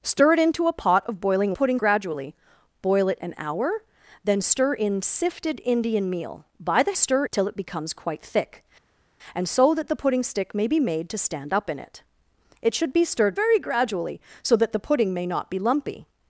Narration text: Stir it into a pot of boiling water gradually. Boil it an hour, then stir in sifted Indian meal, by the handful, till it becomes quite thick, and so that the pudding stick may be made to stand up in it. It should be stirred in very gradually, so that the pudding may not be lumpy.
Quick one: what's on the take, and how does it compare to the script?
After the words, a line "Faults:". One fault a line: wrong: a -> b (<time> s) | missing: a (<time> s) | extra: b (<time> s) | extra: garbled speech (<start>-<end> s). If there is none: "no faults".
Stir it into a pot of boiling pudding gradually. Boil it an hour, then stir in sifted Indian meal, by the stir, till it becomes quite thick, and so that the pudding stick may be made to stand up in it. It should be stirred very gradually, so that the pudding may not be lumpy.
Faults:
wrong: water -> pudding (1.5 s)
wrong: handful -> stir (6.9 s)
missing: in (13.4 s)